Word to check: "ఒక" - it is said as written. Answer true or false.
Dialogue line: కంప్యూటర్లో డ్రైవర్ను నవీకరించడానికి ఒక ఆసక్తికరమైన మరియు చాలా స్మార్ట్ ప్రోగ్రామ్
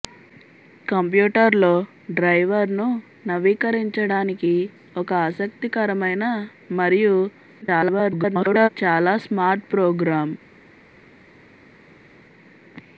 true